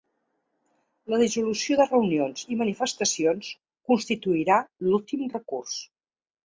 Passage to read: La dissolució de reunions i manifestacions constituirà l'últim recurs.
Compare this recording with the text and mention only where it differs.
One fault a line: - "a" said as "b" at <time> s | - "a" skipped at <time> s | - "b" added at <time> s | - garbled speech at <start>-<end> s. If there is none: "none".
none